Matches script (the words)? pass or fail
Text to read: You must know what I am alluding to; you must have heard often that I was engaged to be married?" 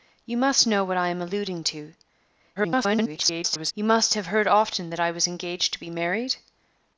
fail